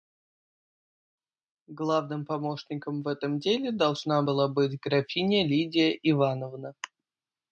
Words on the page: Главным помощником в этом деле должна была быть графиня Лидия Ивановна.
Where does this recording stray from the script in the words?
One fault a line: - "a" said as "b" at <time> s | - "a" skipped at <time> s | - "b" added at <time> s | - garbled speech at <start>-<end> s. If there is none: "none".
none